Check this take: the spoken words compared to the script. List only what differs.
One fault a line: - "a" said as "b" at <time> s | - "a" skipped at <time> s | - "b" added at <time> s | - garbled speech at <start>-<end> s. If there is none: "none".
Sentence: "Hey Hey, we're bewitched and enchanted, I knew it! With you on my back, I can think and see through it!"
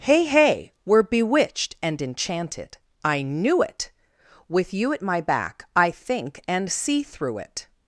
- "on" said as "at" at 4.9 s
- "can" skipped at 5.9 s